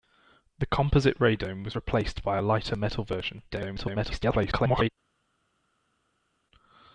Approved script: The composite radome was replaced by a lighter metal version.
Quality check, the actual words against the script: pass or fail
fail